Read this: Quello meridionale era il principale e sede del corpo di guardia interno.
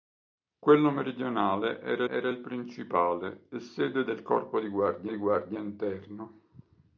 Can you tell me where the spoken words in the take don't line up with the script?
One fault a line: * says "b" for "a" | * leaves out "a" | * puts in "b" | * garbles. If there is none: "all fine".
* puts in "era"
* puts in "di guardia"